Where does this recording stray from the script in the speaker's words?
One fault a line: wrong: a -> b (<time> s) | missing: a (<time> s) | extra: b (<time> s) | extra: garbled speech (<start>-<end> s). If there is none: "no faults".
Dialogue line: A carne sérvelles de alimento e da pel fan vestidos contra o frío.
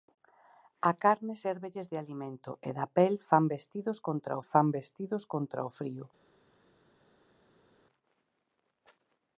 extra: fan vestidos contra (4.5 s)